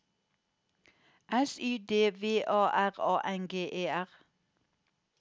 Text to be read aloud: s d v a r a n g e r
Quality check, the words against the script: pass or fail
fail